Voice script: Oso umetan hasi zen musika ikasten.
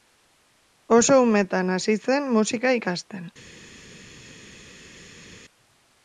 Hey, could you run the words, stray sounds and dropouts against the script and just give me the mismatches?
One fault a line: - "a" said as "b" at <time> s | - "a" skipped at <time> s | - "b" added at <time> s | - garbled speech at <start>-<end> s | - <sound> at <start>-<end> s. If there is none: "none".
none